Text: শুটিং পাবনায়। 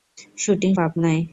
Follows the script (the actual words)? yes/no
yes